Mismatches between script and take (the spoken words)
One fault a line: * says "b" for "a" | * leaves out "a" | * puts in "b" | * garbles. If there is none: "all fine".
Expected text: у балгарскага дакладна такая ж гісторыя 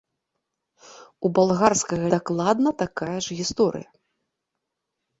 all fine